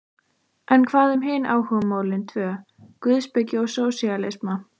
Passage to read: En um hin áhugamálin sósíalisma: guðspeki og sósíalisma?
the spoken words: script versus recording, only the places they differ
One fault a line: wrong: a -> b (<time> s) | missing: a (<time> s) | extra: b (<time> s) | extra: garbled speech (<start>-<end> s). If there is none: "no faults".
extra: hvað (0.9 s)
wrong: sósíalisma -> tvö (2.3 s)